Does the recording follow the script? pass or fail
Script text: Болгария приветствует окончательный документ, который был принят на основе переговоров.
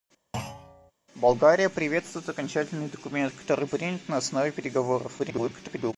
fail